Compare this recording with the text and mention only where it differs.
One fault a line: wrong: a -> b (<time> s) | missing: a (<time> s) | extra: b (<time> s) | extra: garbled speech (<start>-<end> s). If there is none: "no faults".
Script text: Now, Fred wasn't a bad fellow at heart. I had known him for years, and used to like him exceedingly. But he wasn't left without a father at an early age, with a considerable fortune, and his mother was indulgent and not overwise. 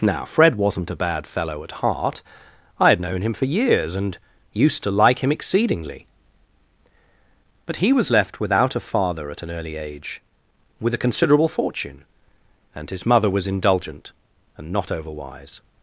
wrong: wasn't -> was (7.9 s)